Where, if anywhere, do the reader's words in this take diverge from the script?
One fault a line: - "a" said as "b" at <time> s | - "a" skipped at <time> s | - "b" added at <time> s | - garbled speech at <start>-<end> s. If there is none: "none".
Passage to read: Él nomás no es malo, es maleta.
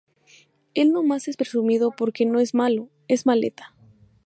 - "es presumido porque" added at 1.3 s